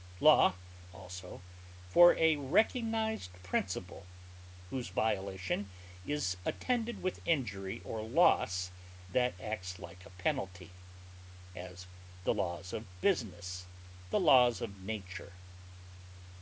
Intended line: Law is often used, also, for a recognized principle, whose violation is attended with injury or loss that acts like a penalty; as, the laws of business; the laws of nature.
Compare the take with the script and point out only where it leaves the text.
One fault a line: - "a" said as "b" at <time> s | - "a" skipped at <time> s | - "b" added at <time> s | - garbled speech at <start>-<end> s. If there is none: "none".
- "is often used" skipped at 0.6 s